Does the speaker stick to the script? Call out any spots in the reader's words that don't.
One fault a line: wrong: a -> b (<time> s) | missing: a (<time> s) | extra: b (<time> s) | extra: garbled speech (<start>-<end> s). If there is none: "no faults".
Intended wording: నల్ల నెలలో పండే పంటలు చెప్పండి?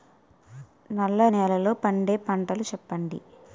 no faults